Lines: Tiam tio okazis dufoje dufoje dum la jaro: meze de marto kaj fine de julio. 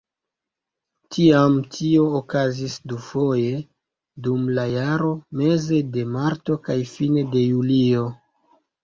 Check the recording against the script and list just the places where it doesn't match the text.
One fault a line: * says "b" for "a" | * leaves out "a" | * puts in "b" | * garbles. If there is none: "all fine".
* leaves out "dufoje"